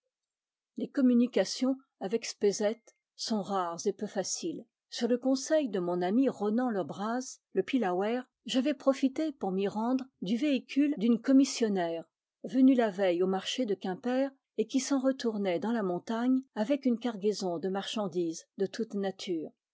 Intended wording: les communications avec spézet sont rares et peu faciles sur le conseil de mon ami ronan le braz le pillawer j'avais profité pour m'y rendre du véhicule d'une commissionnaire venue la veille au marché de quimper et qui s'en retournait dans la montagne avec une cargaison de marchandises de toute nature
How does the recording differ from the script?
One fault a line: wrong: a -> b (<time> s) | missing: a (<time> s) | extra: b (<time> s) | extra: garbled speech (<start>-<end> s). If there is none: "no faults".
no faults